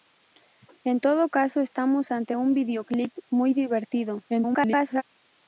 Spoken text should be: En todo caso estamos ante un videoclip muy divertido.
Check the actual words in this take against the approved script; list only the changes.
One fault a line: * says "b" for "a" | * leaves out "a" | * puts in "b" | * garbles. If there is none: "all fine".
* garbles